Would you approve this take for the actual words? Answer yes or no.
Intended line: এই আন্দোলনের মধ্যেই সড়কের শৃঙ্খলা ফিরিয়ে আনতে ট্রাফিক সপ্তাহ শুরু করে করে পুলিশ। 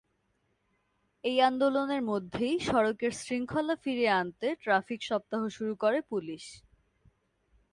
no